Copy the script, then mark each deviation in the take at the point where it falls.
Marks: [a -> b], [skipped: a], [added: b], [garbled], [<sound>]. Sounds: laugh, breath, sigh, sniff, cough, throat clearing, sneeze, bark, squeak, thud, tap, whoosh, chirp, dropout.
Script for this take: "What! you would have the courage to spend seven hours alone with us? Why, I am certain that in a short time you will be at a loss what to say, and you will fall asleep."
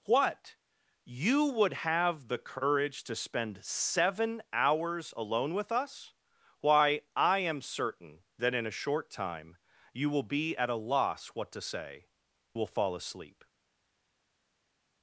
"What! you would have the courage to spend seven hours alone with us? Why, I am certain that in a short time you will be at a loss what to say, [skipped: and you] will fall asleep."